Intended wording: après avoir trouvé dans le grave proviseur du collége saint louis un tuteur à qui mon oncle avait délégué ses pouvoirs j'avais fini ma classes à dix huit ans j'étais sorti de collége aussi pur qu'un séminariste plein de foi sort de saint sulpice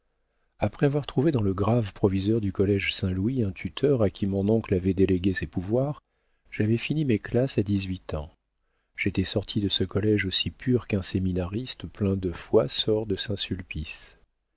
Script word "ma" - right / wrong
wrong